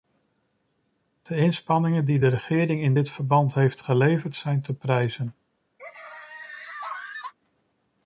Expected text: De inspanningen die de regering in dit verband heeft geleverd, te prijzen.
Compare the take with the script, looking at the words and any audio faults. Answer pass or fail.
fail